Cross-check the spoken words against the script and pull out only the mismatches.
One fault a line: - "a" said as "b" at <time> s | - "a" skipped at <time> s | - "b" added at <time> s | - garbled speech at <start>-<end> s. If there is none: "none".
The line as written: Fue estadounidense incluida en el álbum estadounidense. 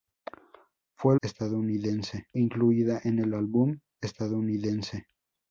none